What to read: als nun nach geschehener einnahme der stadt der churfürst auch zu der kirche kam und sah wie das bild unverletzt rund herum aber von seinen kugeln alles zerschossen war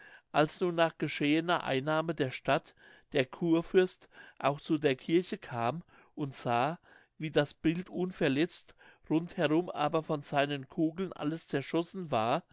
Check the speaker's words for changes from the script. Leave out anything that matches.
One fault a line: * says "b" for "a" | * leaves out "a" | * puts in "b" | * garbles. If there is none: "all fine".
all fine